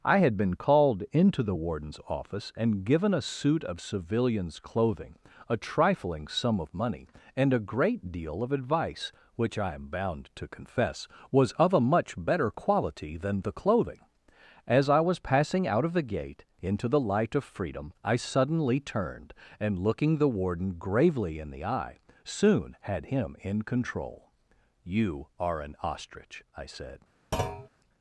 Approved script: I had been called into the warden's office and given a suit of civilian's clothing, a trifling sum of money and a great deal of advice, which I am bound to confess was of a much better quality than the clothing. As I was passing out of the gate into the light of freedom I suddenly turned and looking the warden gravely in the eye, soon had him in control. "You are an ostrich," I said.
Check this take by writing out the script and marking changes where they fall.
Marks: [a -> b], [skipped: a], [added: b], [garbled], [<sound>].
I had been called into the warden's office and given a suit of civilian's clothing, a trifling sum of money and a great deal of advice, which I am bound to confess was of a much better quality than the clothing. As I was passing out of the gate into the light of freedom I suddenly turned and looking the warden gravely in the eye, soon had him in control. "You are an ostrich," I said. [thud]